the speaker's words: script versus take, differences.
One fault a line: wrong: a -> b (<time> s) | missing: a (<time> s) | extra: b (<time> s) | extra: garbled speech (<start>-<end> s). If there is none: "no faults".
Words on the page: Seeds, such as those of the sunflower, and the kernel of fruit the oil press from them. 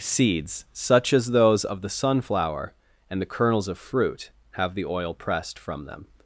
wrong: kernel -> kernels (3.2 s)
extra: have (4.5 s)
wrong: press -> pressed (5.1 s)